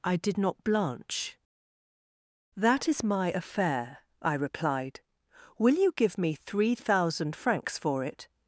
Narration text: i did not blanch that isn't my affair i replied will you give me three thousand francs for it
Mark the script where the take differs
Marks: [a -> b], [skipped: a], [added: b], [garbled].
i did not blanch that [isn't -> is] my affair i replied will you give me three thousand francs for it